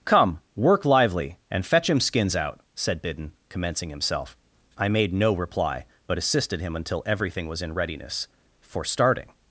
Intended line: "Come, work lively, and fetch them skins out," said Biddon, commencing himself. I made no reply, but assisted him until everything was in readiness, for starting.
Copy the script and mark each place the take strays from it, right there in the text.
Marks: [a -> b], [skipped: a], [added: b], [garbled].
"Come, work lively, and fetch [them -> him] skins out," said Biddon, commencing himself. I made no reply, but assisted him until everything was in readiness, for starting.